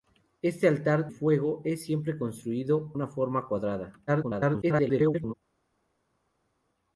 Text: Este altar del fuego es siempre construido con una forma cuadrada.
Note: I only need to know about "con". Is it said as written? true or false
false